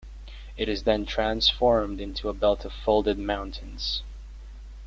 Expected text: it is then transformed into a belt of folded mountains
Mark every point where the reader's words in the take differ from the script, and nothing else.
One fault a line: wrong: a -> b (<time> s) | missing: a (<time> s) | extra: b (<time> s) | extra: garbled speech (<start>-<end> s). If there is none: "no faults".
no faults